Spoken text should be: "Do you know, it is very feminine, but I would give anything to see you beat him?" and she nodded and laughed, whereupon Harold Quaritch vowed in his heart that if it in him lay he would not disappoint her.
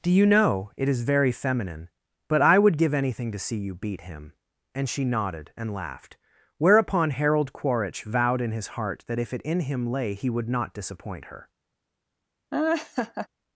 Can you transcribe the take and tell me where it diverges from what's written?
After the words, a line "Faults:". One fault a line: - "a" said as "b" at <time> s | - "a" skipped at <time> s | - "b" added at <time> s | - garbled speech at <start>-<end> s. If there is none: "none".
"Do you know, it is very feminine, but I would give anything to see you beat him?" and she nodded and laughed, whereupon Harold Quaritch vowed in his heart that if it in him lay he would not disappoint her.
Faults:
none